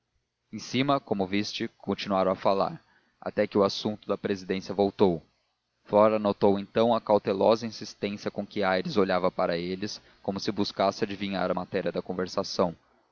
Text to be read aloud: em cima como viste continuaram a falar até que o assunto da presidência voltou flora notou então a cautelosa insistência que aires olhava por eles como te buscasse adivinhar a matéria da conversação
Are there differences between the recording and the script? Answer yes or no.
yes